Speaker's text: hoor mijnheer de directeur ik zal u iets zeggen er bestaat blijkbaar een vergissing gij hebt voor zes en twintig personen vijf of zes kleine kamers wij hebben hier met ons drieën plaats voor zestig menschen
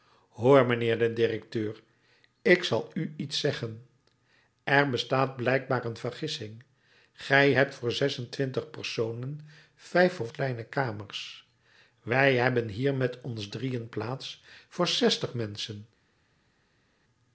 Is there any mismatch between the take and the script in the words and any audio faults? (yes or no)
yes